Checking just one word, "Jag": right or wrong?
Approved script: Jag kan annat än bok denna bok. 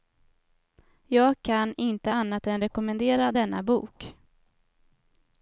right